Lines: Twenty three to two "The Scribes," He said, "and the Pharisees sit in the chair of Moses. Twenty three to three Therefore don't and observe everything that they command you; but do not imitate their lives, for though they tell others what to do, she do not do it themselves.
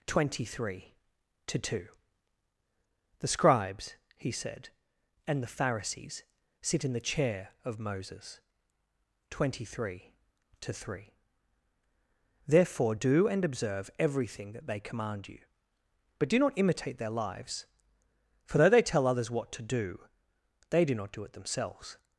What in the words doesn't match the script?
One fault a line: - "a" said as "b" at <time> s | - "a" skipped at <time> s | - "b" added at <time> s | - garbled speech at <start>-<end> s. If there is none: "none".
- "don't" said as "do" at 12.9 s
- "she" said as "they" at 20.7 s